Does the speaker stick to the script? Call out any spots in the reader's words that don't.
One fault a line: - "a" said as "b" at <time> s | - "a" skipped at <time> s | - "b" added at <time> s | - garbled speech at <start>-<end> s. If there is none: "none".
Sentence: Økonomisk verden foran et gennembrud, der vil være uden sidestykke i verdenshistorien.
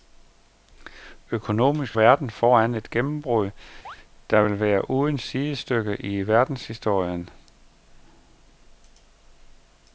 none